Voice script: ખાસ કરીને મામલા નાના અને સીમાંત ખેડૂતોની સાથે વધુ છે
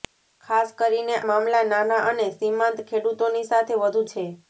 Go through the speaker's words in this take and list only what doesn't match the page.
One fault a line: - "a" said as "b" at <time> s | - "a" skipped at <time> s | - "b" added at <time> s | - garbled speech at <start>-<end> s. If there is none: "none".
none